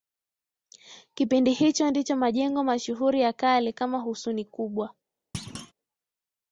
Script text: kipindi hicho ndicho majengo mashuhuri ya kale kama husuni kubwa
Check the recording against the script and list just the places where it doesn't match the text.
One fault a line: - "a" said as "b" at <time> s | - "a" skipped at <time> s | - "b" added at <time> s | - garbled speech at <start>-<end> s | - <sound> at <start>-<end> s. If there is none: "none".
- thud at 5.3-5.7 s